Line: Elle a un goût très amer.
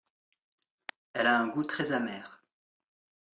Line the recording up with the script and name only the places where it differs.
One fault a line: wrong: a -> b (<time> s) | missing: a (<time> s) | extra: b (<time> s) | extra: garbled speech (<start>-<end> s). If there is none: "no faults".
no faults